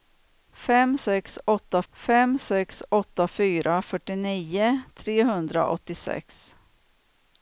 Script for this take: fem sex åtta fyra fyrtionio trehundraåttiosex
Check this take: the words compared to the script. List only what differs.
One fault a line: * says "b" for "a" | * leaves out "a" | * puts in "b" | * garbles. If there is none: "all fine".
* puts in "fem sex åtta"